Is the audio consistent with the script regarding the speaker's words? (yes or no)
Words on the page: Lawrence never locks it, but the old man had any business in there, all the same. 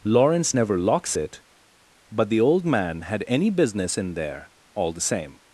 yes